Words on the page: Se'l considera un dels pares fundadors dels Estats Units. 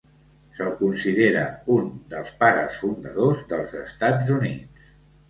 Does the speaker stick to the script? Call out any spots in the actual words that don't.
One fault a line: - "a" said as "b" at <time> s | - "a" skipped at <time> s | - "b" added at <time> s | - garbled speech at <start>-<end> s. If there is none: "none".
none